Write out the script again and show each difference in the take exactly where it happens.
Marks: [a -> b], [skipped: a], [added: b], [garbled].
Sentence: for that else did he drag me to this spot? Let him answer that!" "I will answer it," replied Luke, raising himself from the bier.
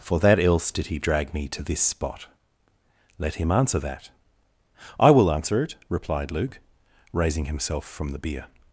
for that else did he drag me to this spot? Let him answer that!" "I will answer it," replied Luke, raising himself from the bier.